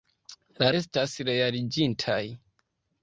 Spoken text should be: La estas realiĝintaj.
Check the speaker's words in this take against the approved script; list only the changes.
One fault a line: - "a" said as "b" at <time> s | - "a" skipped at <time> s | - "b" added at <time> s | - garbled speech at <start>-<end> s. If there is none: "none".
none